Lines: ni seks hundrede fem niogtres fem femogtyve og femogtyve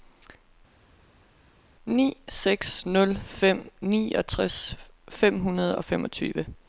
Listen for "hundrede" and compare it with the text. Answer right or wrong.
wrong